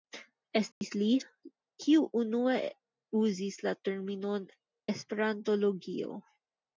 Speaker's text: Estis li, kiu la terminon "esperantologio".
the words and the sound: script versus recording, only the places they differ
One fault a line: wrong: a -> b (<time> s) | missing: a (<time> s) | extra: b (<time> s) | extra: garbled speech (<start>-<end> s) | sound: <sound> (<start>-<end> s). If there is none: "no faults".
sound: dropout (0.7-0.8 s)
extra: unue uzis (2.2 s)